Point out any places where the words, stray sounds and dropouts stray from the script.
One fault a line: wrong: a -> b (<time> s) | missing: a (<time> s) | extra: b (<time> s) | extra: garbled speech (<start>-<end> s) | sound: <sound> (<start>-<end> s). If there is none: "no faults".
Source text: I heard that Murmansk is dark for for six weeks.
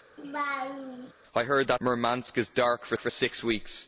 sound: laugh (0.2-1.1 s)